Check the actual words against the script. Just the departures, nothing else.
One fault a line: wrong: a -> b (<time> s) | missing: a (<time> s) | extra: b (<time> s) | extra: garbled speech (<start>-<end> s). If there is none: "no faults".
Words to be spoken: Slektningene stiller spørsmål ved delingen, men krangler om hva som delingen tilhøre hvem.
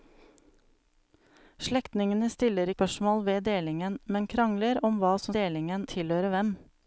no faults